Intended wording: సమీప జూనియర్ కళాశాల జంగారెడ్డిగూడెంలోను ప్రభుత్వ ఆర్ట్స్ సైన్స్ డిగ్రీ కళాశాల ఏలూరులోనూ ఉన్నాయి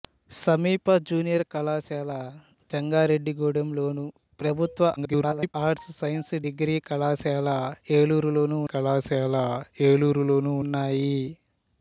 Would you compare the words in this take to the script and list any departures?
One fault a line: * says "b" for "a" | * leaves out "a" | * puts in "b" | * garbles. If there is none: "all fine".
* garbles
* puts in "కళాశాల ఏలూరులోనూ"